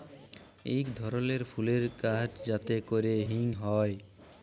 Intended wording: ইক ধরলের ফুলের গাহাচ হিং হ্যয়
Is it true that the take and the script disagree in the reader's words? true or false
true